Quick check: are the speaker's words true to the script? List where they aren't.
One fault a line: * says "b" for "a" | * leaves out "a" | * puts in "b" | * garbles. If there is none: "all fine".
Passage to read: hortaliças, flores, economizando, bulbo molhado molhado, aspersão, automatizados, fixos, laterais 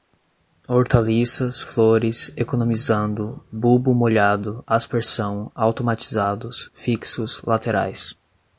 * leaves out "molhado"